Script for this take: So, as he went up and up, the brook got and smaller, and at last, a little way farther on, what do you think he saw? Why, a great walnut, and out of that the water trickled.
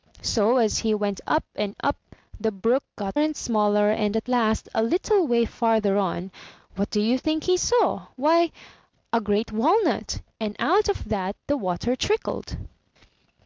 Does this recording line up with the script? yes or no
yes